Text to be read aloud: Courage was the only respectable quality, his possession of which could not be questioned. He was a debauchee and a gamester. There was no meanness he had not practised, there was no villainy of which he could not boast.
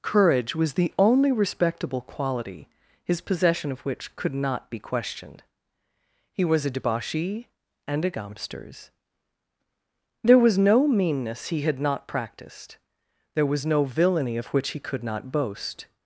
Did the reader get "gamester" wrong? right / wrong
wrong